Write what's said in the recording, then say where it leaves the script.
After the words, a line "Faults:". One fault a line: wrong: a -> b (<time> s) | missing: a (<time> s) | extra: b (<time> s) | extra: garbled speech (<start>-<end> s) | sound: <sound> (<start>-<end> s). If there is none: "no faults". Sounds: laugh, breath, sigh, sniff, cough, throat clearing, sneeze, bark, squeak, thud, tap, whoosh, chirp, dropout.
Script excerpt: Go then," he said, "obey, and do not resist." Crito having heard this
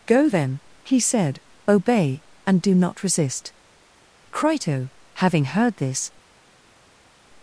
Go then," he said, "obey, and do not resist." Crito having heard this
Faults:
no faults